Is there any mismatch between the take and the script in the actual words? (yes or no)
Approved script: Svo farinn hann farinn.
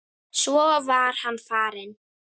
yes